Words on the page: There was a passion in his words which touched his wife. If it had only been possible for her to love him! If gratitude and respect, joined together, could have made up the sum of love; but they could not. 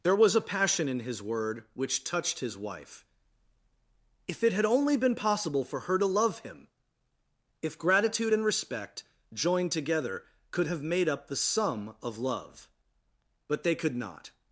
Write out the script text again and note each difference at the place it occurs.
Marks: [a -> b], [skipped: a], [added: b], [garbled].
There was a passion in his [words -> word] which touched his wife. If it had only been possible for her to love him! If gratitude and respect, joined together, could have made up the sum of love; but they could not.